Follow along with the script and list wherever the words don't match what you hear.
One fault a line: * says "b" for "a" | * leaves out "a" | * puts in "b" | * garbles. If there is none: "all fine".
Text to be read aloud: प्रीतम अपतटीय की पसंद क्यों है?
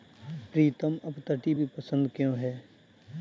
all fine